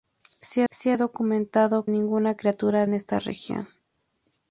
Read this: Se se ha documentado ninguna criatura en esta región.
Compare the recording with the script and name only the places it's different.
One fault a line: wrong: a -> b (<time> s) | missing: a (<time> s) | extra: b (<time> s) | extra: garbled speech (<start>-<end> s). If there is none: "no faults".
no faults